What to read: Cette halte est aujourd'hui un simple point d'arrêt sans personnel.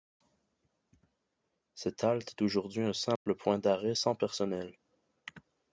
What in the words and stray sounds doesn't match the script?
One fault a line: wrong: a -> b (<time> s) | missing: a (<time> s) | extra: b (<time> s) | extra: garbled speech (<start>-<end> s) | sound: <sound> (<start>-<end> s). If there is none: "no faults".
sound: dropout (3.2-3.3 s)